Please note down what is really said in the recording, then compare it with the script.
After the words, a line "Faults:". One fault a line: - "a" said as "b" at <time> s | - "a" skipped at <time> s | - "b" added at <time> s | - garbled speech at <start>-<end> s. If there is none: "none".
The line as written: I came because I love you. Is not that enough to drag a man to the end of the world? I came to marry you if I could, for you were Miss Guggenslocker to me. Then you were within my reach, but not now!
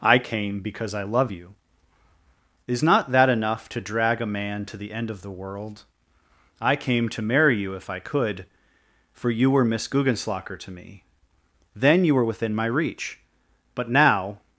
I came because I love you. Is not that enough to drag a man to the end of the world? I came to marry you if I could, for you were Miss Guggenslocker to me. Then you were within my reach, but now!
Faults:
- "not" skipped at 13.9 s